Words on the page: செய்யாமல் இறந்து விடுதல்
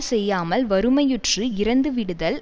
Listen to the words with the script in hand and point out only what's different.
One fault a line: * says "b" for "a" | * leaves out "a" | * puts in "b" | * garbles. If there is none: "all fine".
* puts in "வறுமையுற்று"